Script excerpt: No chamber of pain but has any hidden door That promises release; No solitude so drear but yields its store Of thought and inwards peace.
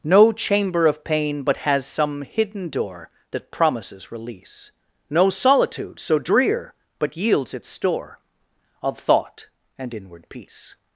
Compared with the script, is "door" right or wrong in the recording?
right